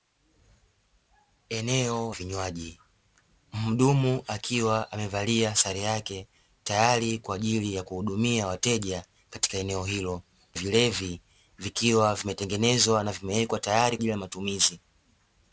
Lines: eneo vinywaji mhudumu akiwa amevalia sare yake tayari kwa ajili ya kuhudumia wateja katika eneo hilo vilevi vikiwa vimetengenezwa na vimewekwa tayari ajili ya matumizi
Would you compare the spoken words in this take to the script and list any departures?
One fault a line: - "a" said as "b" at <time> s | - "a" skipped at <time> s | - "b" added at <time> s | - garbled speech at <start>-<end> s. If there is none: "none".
none